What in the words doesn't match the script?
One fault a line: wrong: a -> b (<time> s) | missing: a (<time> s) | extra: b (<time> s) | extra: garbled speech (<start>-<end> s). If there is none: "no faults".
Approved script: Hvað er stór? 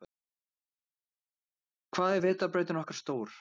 extra: vetrarbrautin okkar (2.3 s)